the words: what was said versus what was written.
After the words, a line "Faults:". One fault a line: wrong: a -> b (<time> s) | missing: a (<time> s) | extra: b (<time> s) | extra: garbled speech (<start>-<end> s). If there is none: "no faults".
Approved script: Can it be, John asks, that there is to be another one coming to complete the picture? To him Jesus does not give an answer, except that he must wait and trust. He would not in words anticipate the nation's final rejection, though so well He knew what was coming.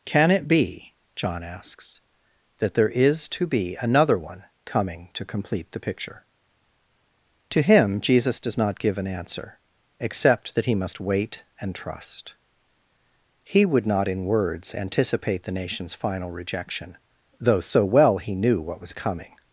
Can it be, John asks, that there is to be another one coming to complete the picture? To him Jesus does not give an answer, except that he must wait and trust. He would not in words anticipate the nation's final rejection, though so well He knew what was coming.
Faults:
no faults